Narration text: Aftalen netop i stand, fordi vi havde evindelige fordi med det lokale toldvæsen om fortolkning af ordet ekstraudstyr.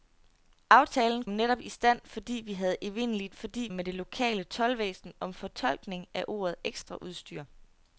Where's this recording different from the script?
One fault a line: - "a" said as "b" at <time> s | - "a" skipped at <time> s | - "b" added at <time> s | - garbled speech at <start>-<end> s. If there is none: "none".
none